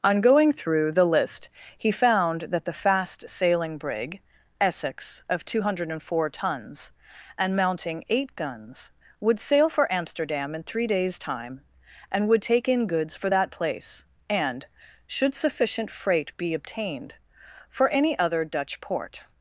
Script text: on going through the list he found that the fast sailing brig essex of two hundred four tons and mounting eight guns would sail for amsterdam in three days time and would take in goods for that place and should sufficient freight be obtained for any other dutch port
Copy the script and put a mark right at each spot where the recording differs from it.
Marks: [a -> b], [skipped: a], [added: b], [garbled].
on going through the list he found that the fast sailing brig essex of two hundred four tons and mounting eight guns would sail for amsterdam in three days time and would take in goods for that place and should sufficient freight be obtained for any other dutch port